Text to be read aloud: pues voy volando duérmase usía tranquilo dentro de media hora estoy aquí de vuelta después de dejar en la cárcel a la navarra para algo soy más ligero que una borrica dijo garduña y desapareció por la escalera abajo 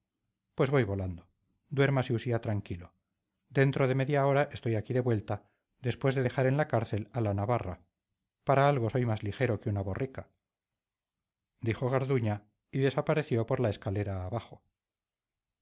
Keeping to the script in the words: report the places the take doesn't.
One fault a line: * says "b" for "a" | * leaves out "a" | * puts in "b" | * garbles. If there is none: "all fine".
all fine